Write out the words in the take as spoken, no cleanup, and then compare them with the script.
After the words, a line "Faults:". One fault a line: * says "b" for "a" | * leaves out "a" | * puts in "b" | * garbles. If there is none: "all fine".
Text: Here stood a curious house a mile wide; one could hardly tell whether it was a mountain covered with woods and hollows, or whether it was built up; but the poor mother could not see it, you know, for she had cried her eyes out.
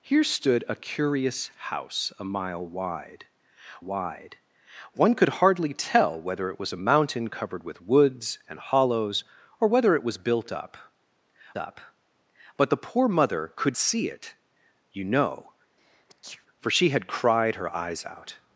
Here stood a curious house a mile wide wide; one could hardly tell whether it was a mountain covered with woods and hollows, or whether it was built up up; but the poor mother could see it, you know, for she had cried her eyes out.
Faults:
* puts in "wide"
* puts in "up"
* leaves out "not"